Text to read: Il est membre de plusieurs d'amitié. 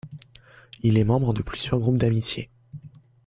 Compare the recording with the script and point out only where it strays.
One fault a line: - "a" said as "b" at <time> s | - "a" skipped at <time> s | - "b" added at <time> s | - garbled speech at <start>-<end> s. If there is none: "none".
- "groupes" added at 1.8 s